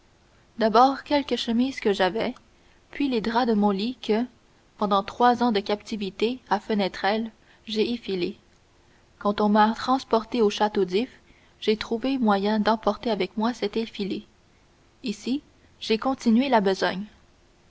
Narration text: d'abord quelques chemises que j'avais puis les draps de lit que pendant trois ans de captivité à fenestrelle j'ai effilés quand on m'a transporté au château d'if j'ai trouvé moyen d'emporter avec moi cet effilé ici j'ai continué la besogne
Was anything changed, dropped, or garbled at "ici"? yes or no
no